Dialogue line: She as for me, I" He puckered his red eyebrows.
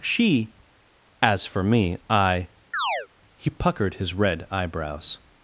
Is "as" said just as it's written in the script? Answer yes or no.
yes